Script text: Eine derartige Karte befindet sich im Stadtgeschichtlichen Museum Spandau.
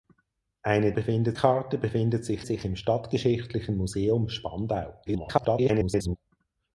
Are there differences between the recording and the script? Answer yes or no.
yes